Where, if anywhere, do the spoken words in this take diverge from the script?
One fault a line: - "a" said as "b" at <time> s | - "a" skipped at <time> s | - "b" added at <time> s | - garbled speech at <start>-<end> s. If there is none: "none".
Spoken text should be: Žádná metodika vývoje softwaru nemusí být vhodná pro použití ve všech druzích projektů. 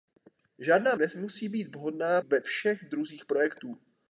- "metodika vývoje softwaru" skipped at 0.9 s
- "pro použití" skipped at 2.2 s